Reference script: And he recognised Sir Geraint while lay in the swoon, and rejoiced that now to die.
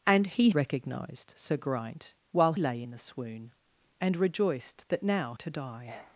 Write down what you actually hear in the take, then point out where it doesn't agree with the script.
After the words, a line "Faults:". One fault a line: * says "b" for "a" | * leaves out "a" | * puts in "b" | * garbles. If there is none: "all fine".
And he recognised Sir Geraint while lay in the swoon, and rejoiced that now to die.
Faults:
all fine